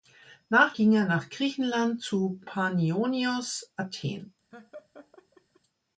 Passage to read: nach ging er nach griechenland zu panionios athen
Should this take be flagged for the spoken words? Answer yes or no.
no